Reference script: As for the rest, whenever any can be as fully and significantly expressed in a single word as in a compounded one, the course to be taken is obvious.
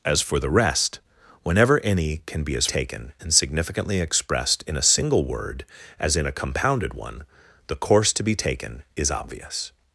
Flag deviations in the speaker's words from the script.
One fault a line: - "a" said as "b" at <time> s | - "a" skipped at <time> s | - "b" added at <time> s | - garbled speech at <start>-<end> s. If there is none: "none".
- "fully" said as "taken" at 2.7 s